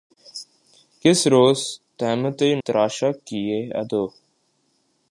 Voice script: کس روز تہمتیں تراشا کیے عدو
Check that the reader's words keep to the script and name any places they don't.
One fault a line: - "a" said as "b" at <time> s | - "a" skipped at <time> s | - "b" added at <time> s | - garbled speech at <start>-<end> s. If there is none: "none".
none